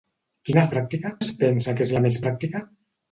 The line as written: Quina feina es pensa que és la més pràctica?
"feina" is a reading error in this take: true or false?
true